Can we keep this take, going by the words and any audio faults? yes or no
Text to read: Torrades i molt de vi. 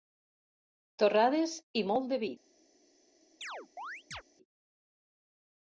no